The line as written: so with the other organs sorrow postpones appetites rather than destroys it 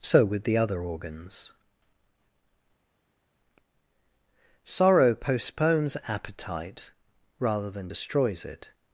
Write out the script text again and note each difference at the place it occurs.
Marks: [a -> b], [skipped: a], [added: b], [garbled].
so with the other organs sorrow postpones [appetites -> appetite] rather than destroys it